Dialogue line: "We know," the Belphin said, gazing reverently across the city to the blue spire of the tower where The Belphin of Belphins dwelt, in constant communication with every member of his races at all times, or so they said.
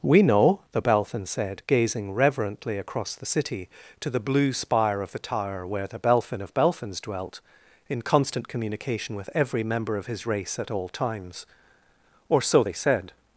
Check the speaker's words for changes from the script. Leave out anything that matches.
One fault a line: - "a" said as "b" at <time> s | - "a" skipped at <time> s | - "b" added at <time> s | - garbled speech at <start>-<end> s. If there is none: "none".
- "races" said as "race" at 10.3 s